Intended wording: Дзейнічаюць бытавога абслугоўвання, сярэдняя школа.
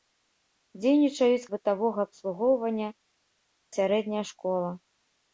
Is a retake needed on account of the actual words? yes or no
no